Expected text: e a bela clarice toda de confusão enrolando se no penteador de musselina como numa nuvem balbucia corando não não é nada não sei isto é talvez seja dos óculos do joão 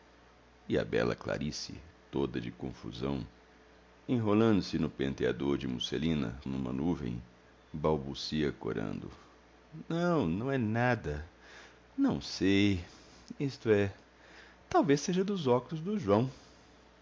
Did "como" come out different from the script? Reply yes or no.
yes